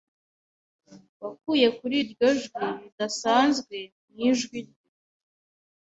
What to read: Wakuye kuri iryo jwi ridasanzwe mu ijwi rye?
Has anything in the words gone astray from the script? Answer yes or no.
no